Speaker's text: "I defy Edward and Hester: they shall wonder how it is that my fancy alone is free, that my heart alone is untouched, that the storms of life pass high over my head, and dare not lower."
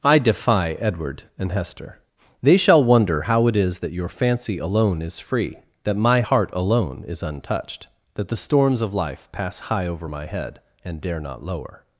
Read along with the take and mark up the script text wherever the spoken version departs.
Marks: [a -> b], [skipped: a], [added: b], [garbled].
"I defy Edward and Hester: they shall wonder how it is that [my -> your] fancy alone is free, that my heart alone is untouched, that the storms of life pass high over my head, and dare not lower."